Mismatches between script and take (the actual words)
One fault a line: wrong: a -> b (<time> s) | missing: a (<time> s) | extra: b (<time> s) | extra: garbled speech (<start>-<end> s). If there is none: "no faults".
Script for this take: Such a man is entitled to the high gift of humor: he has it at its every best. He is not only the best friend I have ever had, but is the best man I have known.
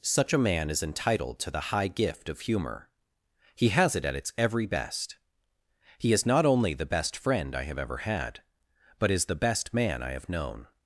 no faults